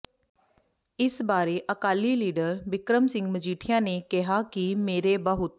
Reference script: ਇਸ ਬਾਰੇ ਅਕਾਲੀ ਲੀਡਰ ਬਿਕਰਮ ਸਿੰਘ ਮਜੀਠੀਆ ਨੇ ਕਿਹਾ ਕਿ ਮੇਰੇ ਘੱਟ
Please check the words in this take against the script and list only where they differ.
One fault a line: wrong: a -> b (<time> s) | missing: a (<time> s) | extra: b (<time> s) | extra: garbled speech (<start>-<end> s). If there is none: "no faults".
wrong: ਘੱਟ -> ਬਹੁਤ (5.2 s)